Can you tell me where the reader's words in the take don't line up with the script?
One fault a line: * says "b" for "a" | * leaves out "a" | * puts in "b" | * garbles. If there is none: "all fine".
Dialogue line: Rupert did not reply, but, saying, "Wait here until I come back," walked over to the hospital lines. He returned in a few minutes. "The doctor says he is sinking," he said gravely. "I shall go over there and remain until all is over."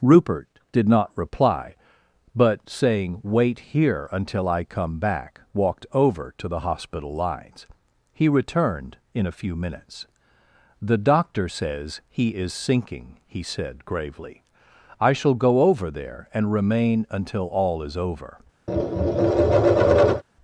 all fine